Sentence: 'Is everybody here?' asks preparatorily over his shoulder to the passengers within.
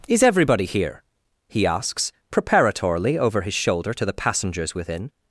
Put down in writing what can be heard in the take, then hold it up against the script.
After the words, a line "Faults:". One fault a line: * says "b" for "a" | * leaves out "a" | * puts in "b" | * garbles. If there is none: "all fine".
'Is everybody here?' he asks preparatorily over his shoulder to the passengers within.
Faults:
* puts in "he"